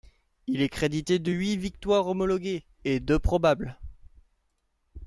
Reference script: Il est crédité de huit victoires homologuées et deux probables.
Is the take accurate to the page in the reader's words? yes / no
yes